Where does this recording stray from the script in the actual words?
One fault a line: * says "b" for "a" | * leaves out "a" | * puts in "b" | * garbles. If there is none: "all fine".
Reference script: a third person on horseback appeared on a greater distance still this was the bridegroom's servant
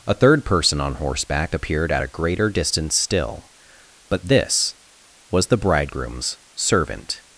* says "at" for "on"
* puts in "but"